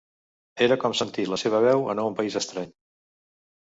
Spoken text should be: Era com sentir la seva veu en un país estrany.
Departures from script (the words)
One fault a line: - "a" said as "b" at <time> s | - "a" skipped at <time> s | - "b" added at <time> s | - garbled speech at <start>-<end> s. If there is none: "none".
none